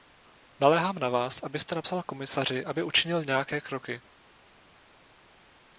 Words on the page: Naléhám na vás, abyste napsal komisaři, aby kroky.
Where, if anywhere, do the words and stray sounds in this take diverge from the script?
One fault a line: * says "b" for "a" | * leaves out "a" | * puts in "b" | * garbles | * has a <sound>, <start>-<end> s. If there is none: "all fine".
* puts in "učinil nějaké"